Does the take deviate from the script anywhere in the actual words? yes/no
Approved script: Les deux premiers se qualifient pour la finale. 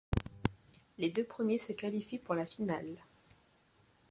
no